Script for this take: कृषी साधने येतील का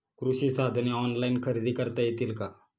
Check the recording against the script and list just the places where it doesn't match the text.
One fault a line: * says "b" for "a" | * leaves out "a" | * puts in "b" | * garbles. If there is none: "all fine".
* puts in "ऑनलाइन खरेदी करता"